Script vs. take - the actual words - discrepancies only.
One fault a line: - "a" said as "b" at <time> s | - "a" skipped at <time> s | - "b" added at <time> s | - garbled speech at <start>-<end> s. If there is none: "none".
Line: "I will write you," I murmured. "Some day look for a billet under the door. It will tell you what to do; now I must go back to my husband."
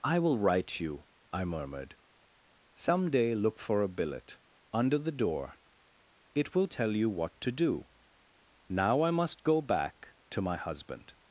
none